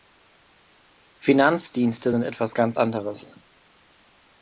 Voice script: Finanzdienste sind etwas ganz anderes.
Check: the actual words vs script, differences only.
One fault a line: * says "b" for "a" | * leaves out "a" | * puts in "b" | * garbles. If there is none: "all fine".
all fine